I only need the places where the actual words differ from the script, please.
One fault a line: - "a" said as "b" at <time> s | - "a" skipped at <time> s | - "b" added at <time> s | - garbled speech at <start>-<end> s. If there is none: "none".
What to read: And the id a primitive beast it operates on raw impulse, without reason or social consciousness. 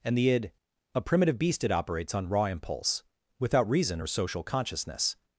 none